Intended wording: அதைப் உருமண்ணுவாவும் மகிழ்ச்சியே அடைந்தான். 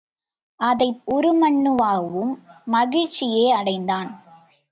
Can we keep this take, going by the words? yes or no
yes